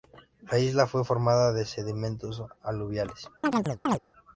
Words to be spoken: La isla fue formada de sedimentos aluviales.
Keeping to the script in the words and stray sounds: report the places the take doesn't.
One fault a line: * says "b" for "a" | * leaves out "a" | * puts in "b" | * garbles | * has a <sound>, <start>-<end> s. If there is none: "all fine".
* has a chirp, 3.4-4.0 s